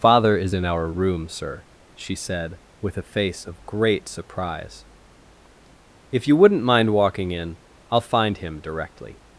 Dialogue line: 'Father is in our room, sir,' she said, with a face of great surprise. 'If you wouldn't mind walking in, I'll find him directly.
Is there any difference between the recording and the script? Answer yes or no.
no